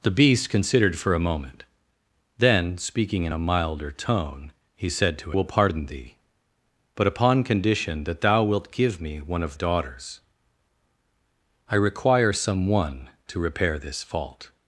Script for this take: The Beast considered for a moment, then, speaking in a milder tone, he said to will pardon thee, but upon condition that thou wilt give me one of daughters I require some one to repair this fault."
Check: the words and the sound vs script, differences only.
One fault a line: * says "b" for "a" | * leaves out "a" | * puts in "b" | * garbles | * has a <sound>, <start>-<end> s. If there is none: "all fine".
all fine